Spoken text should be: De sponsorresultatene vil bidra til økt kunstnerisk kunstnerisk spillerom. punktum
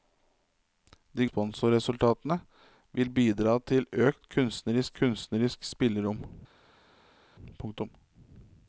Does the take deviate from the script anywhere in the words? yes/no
no